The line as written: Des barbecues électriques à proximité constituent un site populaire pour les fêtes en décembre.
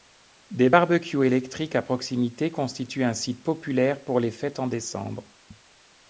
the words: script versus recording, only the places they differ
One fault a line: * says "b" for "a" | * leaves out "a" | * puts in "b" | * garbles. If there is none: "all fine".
all fine